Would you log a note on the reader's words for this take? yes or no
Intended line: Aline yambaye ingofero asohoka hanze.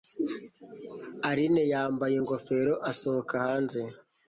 no